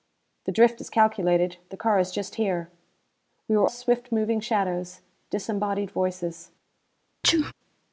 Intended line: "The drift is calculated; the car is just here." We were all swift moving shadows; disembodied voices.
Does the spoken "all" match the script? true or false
false